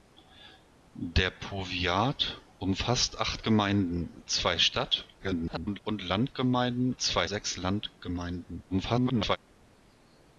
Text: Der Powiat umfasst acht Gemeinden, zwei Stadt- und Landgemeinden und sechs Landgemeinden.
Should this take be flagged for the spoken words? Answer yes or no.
yes